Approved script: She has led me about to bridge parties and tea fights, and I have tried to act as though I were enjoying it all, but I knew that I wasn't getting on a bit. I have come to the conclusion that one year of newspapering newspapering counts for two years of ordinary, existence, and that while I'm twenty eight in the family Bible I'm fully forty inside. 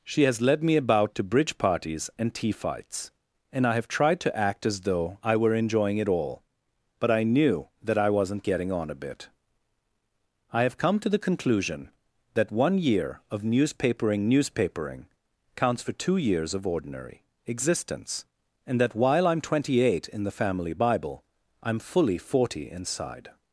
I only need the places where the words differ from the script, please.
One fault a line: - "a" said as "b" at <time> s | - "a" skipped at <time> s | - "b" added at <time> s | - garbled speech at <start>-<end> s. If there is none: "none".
none